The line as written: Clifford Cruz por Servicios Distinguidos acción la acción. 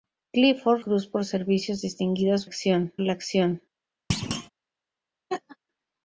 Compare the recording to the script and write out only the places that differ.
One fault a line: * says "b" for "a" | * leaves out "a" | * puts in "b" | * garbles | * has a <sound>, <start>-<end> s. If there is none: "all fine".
* has a thud, 4.1-4.5 s
* has a laugh, 5.3-5.6 s